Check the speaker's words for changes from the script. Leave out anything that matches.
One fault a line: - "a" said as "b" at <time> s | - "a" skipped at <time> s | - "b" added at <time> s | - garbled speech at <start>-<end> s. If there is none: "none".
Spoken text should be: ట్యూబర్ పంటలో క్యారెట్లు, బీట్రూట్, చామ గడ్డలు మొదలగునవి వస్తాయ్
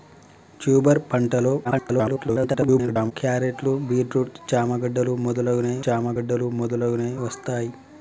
- garbled speech at 1.6-3.1 s
- "చామ గడ్డలు మొదలగునవి" added at 5.9 s